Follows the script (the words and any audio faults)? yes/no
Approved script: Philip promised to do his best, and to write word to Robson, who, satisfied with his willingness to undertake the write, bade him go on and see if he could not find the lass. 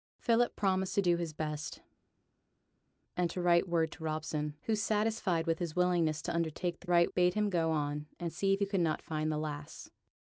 yes